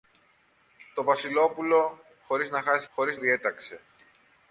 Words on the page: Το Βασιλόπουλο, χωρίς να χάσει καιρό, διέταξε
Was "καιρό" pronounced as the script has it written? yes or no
no